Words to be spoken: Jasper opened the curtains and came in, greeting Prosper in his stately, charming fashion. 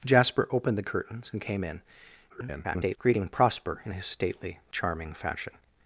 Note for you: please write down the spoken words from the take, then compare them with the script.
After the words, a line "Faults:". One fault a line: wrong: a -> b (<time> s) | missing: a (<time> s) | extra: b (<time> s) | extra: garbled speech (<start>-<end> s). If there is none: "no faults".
Jasper opened the curtains and came in, [garbled] greeting Prosper in his stately, charming fashion.
Faults:
extra: garbled speech (2.3-3.0 s)